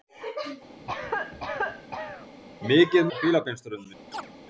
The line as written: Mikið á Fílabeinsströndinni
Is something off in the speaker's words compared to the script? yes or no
no